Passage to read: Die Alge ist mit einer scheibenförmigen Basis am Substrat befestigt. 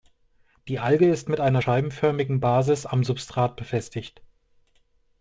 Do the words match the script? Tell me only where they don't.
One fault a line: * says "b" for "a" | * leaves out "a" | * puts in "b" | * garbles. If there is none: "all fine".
all fine